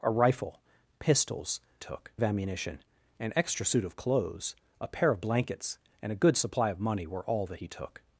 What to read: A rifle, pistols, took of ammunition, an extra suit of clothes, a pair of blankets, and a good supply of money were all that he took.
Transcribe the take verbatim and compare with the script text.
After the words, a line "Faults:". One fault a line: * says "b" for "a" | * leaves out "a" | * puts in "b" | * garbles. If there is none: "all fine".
A rifle, pistols, took of ammunition, an extra suit of clothes, a pair of blankets, and a good supply of money were all that he took.
Faults:
all fine